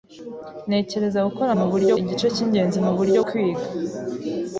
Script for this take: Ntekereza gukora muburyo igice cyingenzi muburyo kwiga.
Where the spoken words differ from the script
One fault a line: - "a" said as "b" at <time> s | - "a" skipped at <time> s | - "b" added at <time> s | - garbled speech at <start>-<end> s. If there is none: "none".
none